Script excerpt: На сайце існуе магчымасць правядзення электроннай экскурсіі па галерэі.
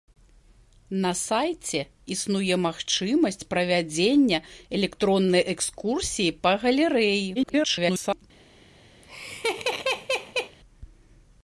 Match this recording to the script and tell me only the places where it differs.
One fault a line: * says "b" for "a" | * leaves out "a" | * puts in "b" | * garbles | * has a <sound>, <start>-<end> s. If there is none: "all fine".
* garbles
* has a laugh, 9.0-10.6 s